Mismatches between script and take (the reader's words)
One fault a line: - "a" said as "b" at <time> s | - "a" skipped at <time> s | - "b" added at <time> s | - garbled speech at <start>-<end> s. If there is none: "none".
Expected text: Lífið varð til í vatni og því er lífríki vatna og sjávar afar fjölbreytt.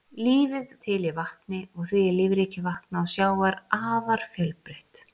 - "varð" skipped at 0.7 s